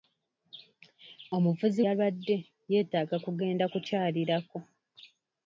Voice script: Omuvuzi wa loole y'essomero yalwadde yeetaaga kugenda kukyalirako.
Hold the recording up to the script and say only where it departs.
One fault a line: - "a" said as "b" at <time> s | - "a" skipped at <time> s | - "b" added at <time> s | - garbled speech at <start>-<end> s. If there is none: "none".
- "wa loole y'essomero" skipped at 1.8 s